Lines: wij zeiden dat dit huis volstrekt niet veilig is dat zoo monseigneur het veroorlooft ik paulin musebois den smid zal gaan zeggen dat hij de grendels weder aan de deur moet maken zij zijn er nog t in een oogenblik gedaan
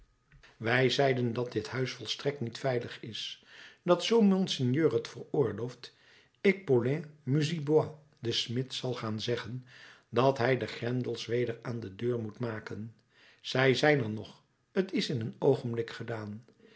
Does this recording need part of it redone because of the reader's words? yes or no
yes